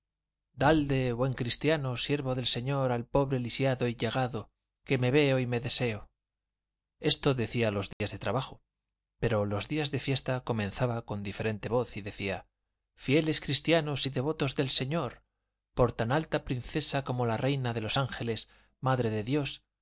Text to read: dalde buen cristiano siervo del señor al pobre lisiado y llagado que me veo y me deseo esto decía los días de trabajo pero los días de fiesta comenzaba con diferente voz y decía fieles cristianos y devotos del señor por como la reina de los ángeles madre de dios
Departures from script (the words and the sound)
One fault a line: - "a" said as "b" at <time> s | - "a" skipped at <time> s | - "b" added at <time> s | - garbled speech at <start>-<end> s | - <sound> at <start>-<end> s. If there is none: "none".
- dropout at 7.9-8.0 s
- "tan alta princesa" added at 15.9 s